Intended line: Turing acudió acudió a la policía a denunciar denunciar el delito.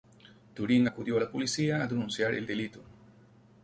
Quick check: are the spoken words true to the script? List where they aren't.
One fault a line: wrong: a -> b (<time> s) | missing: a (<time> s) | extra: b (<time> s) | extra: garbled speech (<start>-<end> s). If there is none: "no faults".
missing: acudió (1.2 s)
missing: denunciar (2.3 s)